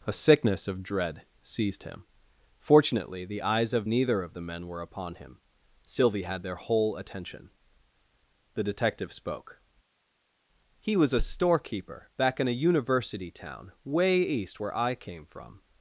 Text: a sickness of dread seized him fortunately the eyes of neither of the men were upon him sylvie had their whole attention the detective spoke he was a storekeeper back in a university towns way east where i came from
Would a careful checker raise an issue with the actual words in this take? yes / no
yes